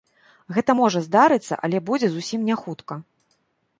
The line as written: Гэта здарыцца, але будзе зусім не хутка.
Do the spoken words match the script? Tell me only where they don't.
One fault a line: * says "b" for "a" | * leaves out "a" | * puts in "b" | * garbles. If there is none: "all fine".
* puts in "можа"